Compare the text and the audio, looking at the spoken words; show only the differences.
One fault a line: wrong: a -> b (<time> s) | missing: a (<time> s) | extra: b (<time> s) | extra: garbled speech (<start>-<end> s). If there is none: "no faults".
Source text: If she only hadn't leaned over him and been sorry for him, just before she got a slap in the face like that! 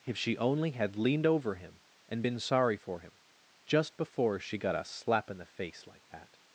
wrong: hadn't -> had (0.7 s)